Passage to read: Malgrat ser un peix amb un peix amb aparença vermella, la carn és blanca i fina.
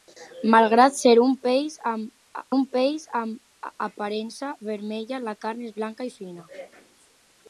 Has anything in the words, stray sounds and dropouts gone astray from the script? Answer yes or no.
no